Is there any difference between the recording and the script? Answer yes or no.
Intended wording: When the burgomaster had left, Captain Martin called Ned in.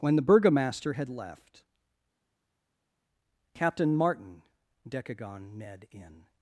yes